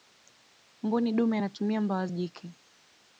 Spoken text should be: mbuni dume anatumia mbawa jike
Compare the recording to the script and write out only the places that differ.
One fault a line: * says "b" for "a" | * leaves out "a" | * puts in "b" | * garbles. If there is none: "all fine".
all fine